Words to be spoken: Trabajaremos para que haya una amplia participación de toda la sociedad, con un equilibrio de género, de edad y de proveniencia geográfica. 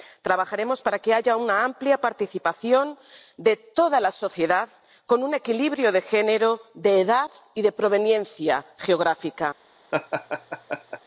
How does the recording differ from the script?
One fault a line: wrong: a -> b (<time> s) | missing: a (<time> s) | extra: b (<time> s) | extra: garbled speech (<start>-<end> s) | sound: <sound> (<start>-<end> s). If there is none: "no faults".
sound: laugh (9.9-11.0 s)